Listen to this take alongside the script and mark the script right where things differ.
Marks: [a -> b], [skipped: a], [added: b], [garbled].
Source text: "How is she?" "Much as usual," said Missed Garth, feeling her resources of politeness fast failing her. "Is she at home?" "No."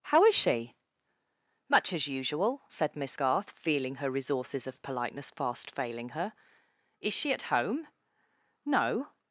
"How is she?" "Much as usual," said [Missed -> Miss] Garth, feeling her resources of politeness fast failing her. "Is she at home?" "No."